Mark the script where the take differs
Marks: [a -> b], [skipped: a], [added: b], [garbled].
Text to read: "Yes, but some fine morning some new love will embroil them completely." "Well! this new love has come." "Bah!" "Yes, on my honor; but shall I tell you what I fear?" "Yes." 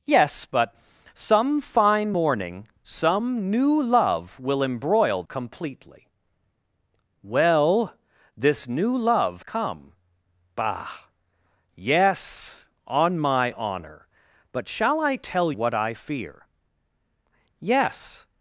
"Yes, but some fine morning some new love will embroil [skipped: them] completely." "Well! this new love [skipped: has] come." "Bah!" "Yes, on my honor; but shall I tell [skipped: you] what I fear?" "Yes."